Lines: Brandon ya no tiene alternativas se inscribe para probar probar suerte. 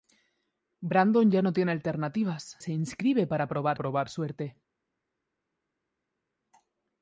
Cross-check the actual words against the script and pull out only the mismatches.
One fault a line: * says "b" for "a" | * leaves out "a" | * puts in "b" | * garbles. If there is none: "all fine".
all fine